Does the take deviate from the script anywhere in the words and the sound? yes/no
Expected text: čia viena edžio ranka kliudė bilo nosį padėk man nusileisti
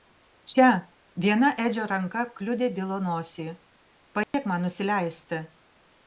yes